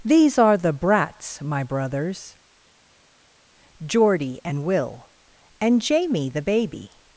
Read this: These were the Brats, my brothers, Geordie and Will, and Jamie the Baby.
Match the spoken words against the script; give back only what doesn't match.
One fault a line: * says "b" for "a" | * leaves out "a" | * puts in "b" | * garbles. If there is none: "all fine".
* says "are" for "were"